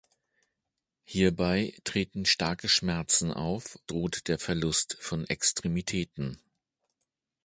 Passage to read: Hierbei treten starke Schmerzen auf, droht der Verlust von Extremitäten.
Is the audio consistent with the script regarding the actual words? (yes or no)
yes